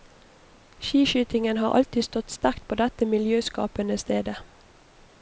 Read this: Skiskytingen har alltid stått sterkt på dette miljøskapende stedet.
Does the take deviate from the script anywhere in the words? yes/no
no